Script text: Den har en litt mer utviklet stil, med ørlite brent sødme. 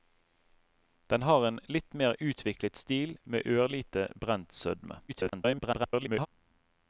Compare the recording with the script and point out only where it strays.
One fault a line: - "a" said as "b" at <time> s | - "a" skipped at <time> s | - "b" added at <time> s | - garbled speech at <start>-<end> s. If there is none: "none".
- garbled speech at 5.1-6.3 s